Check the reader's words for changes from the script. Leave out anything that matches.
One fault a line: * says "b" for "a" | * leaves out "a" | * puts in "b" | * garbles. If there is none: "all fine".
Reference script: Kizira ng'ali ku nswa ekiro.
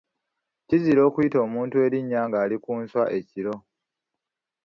* puts in "okuyita omuntu erinnya"